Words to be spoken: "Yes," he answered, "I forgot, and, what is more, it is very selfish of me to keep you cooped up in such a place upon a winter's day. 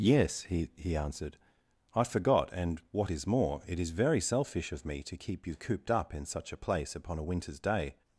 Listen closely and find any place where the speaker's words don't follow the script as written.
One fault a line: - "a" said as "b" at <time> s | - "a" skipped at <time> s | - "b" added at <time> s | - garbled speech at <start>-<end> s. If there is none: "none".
- "he" added at 0.8 s